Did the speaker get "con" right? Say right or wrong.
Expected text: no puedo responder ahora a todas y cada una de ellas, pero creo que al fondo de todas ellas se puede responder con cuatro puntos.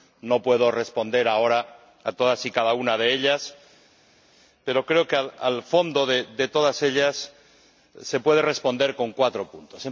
right